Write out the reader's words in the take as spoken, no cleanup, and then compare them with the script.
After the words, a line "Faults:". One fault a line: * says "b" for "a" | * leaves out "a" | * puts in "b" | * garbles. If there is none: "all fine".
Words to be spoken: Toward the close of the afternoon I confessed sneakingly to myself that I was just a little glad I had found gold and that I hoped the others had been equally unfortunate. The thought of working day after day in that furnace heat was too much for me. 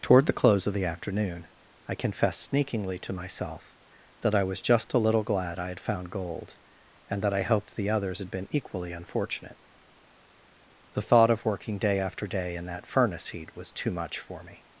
Toward the close of the afternoon I confessed sneakingly to myself that I was just a little glad I had found gold and that I hoped the others had been equally unfortunate. The thought of working day after day in that furnace heat was too much for me.
Faults:
all fine